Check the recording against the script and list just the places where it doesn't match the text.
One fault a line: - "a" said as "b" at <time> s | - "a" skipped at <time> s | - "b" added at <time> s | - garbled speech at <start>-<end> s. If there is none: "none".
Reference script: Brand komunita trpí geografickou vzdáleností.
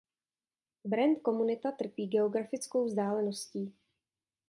none